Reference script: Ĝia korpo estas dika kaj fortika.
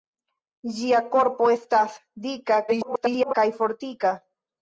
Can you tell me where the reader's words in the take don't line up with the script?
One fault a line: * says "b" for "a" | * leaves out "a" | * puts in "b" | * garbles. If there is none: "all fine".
* garbles